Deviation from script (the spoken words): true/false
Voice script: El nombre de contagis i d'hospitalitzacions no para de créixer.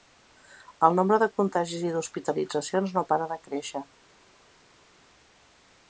false